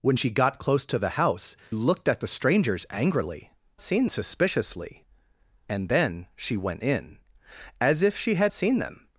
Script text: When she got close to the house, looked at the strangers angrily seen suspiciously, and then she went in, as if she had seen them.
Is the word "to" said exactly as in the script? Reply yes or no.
yes